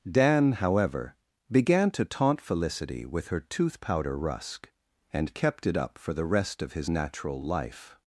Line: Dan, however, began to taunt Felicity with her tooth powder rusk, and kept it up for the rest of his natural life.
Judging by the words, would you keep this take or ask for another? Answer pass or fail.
pass